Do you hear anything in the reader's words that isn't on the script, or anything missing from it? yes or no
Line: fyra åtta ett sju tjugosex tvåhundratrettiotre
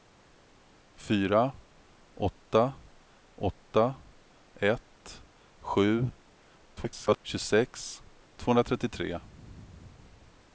yes